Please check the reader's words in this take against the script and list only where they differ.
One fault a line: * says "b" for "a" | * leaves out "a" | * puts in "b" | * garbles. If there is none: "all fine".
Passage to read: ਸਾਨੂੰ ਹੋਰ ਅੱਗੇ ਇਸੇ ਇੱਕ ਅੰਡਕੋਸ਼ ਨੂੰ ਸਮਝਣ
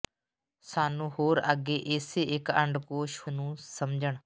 all fine